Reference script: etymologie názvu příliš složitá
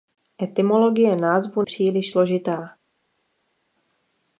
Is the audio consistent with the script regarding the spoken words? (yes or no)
yes